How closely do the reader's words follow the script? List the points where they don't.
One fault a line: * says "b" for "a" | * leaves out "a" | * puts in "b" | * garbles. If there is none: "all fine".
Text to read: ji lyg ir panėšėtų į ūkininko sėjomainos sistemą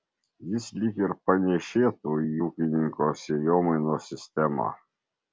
* says "jis" for "ji"